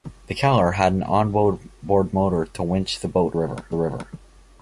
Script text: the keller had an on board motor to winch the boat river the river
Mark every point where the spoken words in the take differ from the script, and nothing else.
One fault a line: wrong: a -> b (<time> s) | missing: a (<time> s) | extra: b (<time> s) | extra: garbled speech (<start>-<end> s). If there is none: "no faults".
no faults